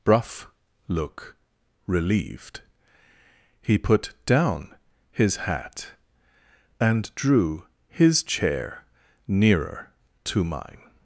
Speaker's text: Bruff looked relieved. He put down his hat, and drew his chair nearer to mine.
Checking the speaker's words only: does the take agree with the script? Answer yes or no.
no